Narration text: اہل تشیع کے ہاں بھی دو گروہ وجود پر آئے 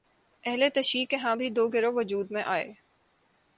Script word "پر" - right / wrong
wrong